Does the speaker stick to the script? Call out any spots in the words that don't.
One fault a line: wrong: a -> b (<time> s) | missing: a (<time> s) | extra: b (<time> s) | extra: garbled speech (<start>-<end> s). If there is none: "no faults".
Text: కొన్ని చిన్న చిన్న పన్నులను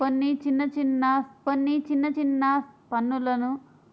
extra: కొన్ని చిన్న చిన్న (1.5 s)